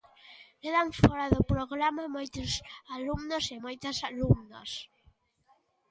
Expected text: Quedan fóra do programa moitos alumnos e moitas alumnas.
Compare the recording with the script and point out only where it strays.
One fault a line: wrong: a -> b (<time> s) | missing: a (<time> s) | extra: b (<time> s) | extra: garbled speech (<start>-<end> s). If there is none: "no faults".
no faults